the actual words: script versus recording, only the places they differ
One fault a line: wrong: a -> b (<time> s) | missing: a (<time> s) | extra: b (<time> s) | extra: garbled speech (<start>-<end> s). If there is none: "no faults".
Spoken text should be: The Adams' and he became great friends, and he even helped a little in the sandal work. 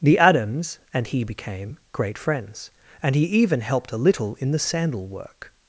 no faults